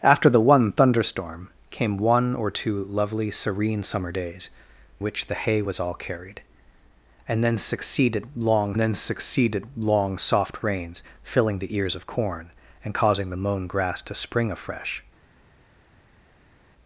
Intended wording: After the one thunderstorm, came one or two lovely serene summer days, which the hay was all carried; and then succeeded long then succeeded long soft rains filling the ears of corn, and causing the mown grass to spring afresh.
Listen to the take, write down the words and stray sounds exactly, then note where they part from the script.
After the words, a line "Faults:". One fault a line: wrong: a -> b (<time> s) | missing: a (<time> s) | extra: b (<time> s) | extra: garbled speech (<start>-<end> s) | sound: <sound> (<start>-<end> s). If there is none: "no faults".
After the one thunderstorm, came one or two lovely serene summer days, which the hay was all carried; and then succeeded long then succeeded long soft rains filling the ears of corn, and causing the mown grass to spring afresh.
Faults:
no faults